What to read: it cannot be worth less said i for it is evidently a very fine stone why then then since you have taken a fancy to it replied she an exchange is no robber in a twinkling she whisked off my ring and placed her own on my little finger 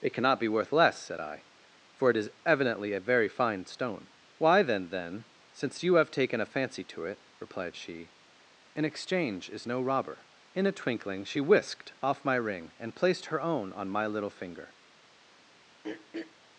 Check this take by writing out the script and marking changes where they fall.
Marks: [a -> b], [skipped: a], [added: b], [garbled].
it cannot be worth less said i for it is evidently a very fine stone why then then since you have taken a fancy to it replied she an exchange is no robber in a twinkling she whisked off my ring and placed her own on my little finger